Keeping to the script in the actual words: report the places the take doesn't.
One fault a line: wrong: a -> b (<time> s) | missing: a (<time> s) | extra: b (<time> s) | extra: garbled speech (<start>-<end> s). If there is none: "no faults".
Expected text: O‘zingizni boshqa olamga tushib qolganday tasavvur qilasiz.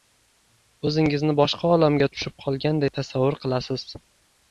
no faults